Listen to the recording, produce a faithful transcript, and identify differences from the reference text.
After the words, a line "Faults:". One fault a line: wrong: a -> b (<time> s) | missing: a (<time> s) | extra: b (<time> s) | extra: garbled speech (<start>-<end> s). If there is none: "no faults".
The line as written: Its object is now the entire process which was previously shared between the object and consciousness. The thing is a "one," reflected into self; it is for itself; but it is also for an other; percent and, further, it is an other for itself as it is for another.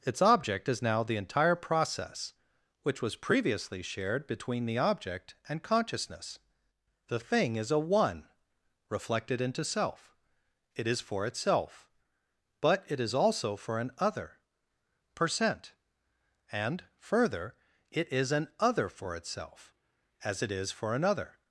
Its object is now the entire process which was previously shared between the object and consciousness. The thing is a "one," reflected into self; it is for itself; but it is also for an other; percent and, further, it is an other for itself as it is for another.
Faults:
no faults